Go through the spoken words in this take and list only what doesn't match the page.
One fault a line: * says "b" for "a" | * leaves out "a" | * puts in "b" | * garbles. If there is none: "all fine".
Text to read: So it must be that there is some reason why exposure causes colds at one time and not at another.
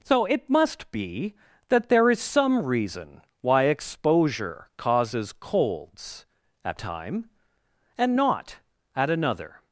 * leaves out "one"